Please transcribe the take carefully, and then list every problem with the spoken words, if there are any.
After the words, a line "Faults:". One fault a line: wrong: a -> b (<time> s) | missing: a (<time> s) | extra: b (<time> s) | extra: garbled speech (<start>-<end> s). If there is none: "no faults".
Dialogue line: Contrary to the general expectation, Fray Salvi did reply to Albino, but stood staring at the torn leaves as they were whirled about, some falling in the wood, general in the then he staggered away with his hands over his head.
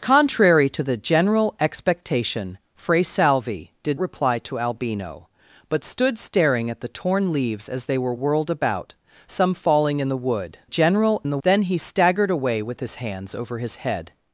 Contrary to the general expectation, Fray Salvi did reply to Albino, but stood staring at the torn leaves as they were whirled about, some falling in the wood, general in the then he staggered away with his hands over his head.
Faults:
no faults